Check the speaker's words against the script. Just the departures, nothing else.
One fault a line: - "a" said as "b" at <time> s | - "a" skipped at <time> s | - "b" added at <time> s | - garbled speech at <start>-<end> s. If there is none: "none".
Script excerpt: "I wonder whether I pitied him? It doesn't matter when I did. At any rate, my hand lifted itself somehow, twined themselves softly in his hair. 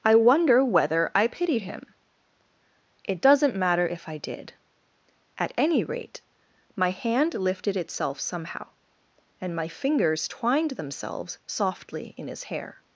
- "when" said as "if" at 3.9 s
- "and my fingers" added at 9.4 s